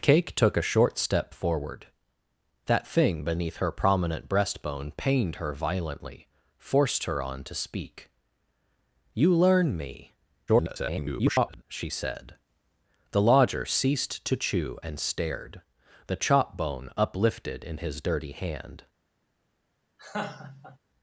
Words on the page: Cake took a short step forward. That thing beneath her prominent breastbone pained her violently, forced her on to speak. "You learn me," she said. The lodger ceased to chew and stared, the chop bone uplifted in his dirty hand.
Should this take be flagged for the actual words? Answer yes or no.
yes